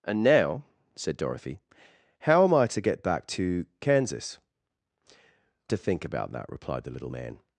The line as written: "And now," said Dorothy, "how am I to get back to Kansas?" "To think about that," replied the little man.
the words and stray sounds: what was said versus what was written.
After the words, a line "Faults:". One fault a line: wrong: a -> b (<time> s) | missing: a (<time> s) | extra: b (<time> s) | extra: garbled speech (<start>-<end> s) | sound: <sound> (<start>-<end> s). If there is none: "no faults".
"And now," said Dorothy, "how am I to get back to Kansas?" "To think about that," replied the little man.
Faults:
no faults